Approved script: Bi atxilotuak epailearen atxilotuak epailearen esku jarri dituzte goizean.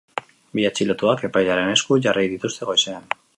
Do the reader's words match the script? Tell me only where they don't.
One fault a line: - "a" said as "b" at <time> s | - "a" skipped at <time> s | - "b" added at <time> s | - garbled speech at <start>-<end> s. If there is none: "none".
- "atxilotuak epailearen" skipped at 1.7 s